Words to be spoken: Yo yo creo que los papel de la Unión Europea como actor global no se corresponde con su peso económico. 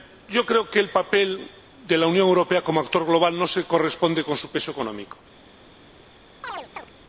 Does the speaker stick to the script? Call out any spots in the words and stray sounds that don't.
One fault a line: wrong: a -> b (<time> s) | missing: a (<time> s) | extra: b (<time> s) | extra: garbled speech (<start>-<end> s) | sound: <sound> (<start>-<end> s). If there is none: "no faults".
missing: yo (0.5 s)
wrong: los -> el (0.8 s)
sound: chirp (6.4-6.9 s)